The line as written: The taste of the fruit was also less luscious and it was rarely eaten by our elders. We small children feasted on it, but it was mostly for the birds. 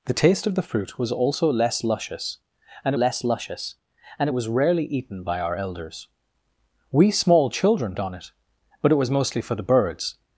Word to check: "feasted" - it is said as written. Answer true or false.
false